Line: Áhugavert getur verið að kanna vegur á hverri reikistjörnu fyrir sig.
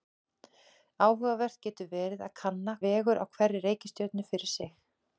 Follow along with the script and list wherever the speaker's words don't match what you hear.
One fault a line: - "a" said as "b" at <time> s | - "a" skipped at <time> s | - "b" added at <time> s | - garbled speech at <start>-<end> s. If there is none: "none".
none